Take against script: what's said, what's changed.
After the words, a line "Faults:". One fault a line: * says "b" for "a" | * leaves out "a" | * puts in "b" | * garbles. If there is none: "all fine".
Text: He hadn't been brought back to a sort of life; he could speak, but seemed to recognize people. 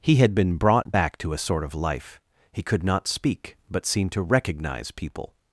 He had been brought back to a sort of life; he could not speak, but seemed to recognize people.
Faults:
* says "had" for "hadn't"
* puts in "not"